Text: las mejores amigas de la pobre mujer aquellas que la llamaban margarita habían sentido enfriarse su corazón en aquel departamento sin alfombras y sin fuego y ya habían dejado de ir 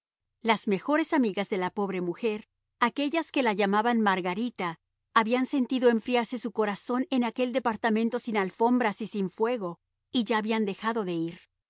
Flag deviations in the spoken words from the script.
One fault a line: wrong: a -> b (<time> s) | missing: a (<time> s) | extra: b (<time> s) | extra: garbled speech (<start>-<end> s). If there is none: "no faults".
no faults